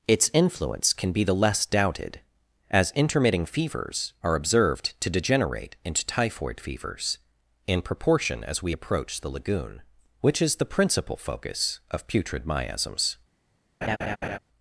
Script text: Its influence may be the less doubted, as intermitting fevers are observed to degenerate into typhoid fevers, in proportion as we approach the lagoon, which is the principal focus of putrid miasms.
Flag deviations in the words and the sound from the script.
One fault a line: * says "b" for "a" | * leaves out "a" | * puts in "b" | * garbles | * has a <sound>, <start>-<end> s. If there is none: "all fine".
* says "can" for "may"
* has a laugh, 13.8-14.4 s